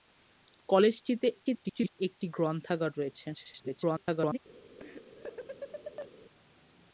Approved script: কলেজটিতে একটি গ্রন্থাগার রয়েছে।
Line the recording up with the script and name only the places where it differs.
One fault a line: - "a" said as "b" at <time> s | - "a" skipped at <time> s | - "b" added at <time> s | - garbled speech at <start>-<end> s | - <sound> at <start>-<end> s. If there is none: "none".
- garbled speech at 1.3-2.0 s
- garbled speech at 3.3-4.4 s
- laugh at 4.8-6.1 s